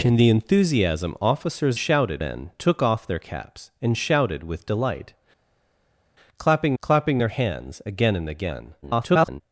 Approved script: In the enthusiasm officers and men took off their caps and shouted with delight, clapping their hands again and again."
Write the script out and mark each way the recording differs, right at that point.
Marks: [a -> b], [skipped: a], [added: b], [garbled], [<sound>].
In the enthusiasm officers [and -> shouted] men took off their caps and shouted with delight, clapping [added: clapping] their hands again and again." [garbled]